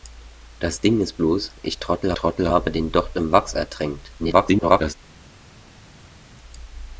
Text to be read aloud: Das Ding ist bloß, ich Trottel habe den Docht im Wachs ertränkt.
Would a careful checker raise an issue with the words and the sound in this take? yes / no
yes